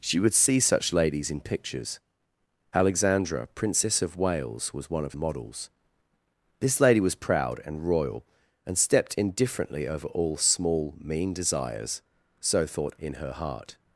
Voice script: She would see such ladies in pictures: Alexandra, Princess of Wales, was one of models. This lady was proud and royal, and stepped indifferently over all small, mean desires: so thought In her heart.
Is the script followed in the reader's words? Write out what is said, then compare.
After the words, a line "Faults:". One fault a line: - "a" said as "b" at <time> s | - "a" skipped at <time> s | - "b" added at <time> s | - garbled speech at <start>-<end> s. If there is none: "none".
She would see such ladies in pictures: Alexandra, Princess of Wales, was one of models. This lady was proud and royal, and stepped indifferently over all small, mean desires: so thought In her heart.
Faults:
none